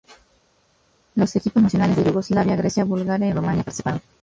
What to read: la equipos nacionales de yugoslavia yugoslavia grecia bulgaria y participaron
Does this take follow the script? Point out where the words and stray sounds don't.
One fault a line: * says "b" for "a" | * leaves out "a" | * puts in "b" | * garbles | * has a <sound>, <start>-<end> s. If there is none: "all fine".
* says "los" for "la"
* leaves out "yugoslavia"
* puts in "rumania"